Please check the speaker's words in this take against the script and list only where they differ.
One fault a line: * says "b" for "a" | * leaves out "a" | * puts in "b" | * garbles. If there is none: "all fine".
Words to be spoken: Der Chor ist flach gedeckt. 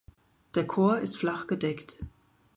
all fine